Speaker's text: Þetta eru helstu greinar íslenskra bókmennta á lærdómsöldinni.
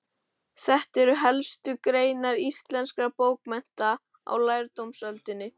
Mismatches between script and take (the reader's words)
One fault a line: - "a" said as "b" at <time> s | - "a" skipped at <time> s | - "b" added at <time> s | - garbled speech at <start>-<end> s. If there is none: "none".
none